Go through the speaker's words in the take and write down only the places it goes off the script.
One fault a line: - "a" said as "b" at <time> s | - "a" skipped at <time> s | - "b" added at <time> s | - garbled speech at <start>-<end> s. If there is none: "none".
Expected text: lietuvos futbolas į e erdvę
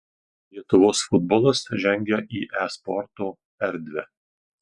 - "žengia" added at 1.8 s
- "sporto" added at 2.8 s